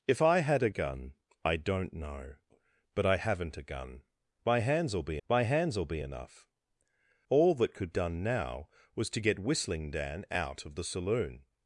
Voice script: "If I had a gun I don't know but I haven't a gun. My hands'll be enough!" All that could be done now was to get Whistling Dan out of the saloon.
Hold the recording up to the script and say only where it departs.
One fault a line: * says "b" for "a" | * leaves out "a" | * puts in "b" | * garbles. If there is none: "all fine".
* puts in "my hands'll be"
* leaves out "be"